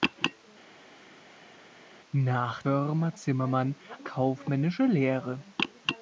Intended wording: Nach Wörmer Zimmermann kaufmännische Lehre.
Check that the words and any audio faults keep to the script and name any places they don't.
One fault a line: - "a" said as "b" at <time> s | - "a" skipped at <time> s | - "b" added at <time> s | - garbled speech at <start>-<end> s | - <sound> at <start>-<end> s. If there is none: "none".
none